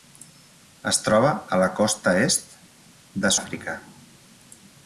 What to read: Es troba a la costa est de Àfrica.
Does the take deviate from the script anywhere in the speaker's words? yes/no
no